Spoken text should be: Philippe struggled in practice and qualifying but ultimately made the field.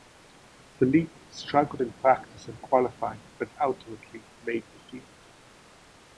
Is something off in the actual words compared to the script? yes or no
no